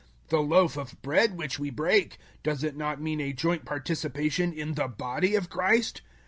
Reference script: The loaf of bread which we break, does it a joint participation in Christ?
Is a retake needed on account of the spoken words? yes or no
yes